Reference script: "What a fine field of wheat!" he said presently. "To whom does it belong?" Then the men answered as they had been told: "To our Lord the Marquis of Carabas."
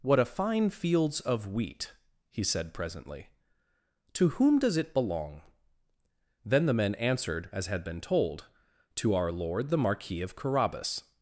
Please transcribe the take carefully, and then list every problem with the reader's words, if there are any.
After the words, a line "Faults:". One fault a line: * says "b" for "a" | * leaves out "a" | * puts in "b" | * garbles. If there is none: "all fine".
"What a fine fields of wheat!" he said presently. "To whom does it belong?" Then the men answered as had been told: "To our Lord the Marquis of Carabas."
Faults:
* says "fields" for "field"
* leaves out "they"